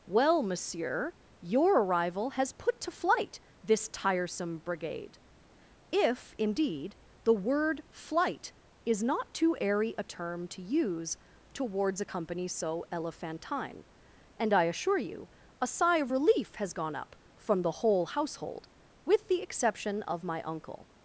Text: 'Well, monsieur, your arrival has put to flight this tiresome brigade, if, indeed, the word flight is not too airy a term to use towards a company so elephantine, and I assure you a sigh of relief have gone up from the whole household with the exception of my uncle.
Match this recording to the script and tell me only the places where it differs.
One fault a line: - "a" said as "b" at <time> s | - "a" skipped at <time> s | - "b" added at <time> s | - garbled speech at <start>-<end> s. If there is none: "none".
- "have" said as "has" at 16.6 s